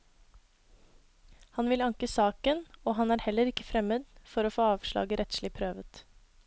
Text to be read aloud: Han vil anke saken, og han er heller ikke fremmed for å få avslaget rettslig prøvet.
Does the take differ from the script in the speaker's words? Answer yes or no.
no